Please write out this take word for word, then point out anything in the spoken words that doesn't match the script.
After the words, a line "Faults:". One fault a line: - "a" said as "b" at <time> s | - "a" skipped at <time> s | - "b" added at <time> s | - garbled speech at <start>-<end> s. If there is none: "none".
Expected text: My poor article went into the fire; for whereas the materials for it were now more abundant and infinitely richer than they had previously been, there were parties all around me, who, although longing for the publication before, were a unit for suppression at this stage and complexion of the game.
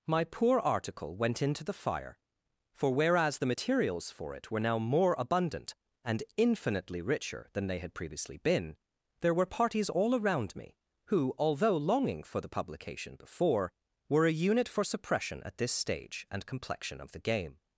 My poor article went into the fire; for whereas the materials for it were now more abundant and infinitely richer than they had previously been, there were parties all around me, who, although longing for the publication before, were a unit for suppression at this stage and complexion of the game.
Faults:
none